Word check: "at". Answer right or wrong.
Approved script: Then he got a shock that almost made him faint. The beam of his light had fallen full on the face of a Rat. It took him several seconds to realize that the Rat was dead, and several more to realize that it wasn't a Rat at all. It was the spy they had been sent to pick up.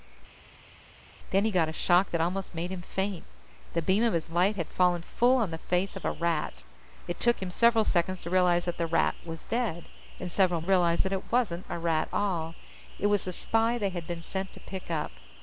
wrong